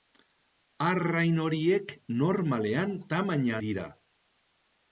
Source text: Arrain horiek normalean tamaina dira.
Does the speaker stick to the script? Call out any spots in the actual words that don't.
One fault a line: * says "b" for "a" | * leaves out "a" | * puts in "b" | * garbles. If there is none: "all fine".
all fine